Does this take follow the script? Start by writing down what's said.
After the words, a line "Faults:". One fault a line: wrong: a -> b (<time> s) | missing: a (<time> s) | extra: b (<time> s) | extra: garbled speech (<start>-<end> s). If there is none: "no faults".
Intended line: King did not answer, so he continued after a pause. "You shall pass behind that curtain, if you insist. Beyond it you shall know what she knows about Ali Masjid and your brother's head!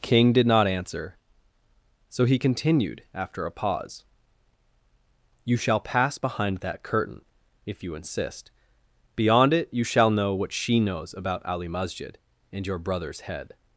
King did not answer, so he continued after a pause. "You shall pass behind that curtain, if you insist. Beyond it you shall know what she knows about Ali Masjid and your brother's head!
Faults:
no faults